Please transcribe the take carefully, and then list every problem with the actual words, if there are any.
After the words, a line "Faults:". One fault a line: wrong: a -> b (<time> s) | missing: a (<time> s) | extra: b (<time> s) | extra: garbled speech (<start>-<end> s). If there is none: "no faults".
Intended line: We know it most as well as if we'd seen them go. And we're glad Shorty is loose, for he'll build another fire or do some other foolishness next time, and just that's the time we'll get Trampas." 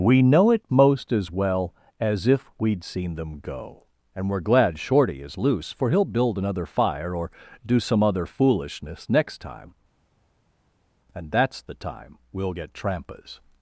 We know it most as well as if we'd seen them go. And we're glad Shorty is loose, for he'll build another fire or do some other foolishness next time, and that's the time we'll get Trampas."
Faults:
missing: just (11.3 s)